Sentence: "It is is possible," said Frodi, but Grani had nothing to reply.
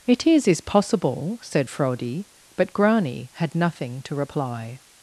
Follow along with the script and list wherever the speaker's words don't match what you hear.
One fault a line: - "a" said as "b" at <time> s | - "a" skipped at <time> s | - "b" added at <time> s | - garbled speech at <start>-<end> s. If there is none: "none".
none